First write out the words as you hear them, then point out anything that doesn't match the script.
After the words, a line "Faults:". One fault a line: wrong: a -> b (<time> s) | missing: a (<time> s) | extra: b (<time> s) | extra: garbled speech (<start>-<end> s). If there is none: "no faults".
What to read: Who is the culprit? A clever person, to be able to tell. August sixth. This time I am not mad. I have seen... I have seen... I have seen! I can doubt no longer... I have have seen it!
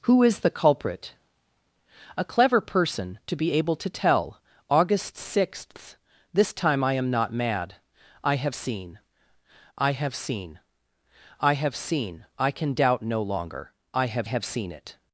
Who is the culprit? A clever person, to be able to tell. August sixth. This time I am not mad. I have seen... I have seen... I have seen! I can doubt no longer... I have have seen it!
Faults:
no faults